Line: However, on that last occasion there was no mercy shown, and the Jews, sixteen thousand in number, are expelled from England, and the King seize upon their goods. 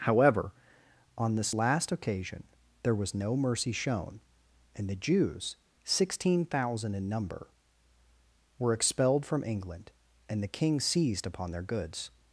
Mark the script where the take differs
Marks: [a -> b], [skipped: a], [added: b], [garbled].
However, on [that -> this] last occasion there was no mercy shown, and the Jews, sixteen thousand in number, [are -> were] expelled from England, and the King [seize -> seized] upon their goods.